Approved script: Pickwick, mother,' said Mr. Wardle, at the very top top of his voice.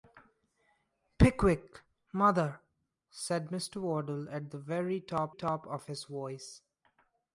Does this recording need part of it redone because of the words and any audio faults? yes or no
no